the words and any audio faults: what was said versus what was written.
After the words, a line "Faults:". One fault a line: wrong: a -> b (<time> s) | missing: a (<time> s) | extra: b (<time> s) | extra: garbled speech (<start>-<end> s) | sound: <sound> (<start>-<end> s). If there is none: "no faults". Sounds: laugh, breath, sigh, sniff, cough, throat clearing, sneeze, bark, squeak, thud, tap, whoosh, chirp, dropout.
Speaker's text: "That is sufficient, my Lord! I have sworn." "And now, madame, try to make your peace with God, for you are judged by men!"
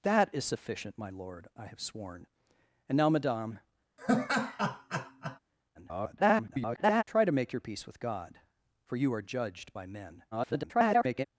"That is sufficient, my Lord! I have sworn." "And now, madame, [garbled] try to make your peace with God, for you are judged by men!" [garbled]
Faults:
sound: laugh (4.0-5.4 s)
extra: garbled speech (5.7-7.0 s)
extra: garbled speech (10.3-11.3 s)